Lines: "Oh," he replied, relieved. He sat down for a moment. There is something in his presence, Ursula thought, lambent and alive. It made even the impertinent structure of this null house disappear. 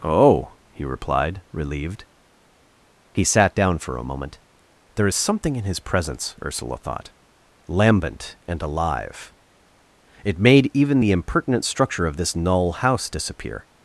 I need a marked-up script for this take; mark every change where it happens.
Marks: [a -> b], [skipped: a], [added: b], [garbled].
"Oh," he replied, relieved. He sat down for a moment. There is something in his presence, Ursula thought, lambent and alive. It made even the impertinent structure of this null house disappear.